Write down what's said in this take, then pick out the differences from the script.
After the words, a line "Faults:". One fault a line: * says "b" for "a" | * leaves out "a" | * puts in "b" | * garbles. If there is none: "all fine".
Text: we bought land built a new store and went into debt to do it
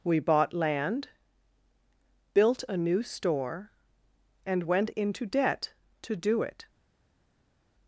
we bought land built a new store and went into debt to do it
Faults:
all fine